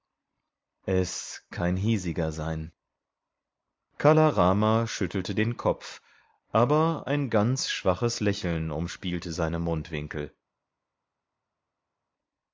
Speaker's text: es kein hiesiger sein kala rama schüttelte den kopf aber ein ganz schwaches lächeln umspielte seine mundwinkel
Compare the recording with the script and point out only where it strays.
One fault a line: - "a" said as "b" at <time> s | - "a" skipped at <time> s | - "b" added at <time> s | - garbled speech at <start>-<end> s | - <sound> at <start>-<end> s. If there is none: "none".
none